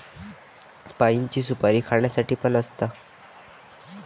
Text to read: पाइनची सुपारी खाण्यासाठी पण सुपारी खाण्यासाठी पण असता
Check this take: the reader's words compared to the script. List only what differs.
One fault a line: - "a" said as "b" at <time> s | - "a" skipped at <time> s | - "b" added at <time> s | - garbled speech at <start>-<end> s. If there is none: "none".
- "सुपारी खाण्यासाठी पण" skipped at 2.5 s